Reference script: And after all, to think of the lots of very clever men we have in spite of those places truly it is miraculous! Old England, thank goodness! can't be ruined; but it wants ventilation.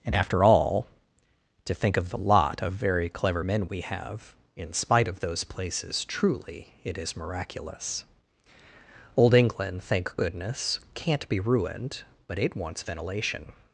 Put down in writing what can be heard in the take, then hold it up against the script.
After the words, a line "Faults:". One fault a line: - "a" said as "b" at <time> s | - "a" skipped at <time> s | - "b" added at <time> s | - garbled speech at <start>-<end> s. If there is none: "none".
And after all, to think of the lot of very clever men we have in spite of those places truly it is miraculous! Old England, thank goodness! can't be ruined; but it wants ventilation.
Faults:
- "lots" said as "lot" at 2.2 s